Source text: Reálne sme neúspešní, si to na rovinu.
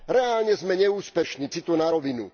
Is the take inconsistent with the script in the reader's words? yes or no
no